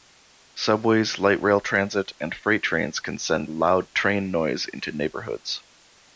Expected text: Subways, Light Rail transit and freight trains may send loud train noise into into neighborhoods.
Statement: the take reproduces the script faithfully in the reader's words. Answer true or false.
false